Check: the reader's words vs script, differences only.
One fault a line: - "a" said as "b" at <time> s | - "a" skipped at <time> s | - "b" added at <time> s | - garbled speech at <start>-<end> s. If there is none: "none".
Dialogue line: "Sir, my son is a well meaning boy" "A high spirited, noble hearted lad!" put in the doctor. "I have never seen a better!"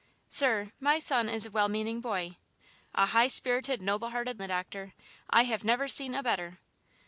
- "lad put in" skipped at 4.4 s